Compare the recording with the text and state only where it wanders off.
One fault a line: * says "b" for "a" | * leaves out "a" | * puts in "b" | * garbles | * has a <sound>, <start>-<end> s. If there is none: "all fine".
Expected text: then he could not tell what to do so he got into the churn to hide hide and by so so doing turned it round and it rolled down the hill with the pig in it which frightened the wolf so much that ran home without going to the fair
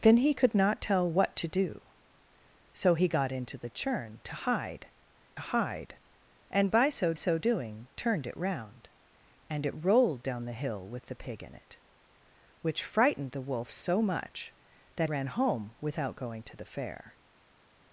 all fine